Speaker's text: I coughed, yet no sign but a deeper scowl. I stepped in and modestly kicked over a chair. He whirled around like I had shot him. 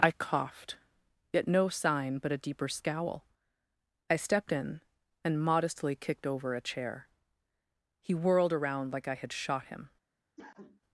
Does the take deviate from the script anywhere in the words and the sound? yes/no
yes